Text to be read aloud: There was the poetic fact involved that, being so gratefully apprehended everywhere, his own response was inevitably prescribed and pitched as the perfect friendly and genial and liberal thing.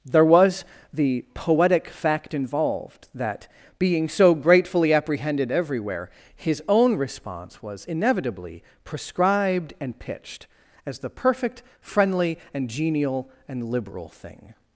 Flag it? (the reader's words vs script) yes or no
no